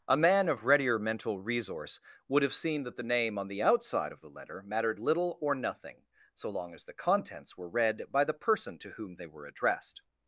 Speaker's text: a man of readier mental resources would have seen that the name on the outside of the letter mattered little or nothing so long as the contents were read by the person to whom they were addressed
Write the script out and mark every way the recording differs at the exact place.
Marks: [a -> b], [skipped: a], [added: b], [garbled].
a man of readier mental [resources -> resource] would have seen that the name on the outside of the letter mattered little or nothing so long as the contents were read by the person to whom they were addressed